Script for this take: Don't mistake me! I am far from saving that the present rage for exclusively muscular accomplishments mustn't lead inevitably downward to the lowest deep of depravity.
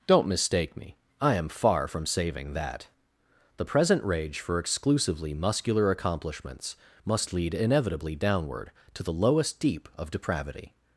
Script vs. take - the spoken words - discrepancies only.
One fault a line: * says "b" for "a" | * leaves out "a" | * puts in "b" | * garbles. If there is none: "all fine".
* says "must" for "mustn't"